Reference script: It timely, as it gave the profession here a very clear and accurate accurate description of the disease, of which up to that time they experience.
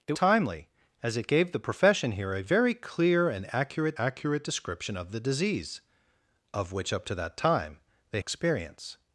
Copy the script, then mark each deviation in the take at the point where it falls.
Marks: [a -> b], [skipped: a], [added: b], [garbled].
It timely, as it gave the profession here a very clear and accurate accurate description of the disease, of which up to that time they experience.